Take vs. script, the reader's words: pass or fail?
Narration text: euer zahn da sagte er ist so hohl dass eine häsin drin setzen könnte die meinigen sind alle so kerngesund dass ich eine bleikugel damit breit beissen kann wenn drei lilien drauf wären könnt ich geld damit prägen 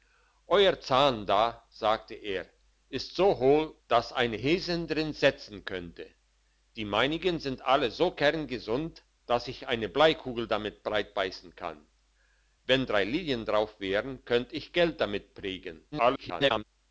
fail